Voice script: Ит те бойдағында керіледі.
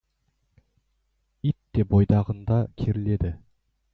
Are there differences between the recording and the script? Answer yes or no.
no